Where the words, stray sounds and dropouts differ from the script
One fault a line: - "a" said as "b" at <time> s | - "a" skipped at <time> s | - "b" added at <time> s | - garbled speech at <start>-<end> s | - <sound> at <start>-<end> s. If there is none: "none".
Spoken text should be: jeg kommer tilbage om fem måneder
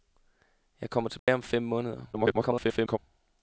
- dropout at 1.2-1.3 s
- garbled speech at 2.1-3.0 s